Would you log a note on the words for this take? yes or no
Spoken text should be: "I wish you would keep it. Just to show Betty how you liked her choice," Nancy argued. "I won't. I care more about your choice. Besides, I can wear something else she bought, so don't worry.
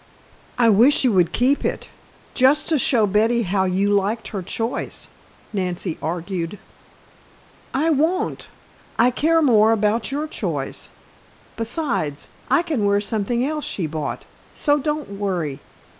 no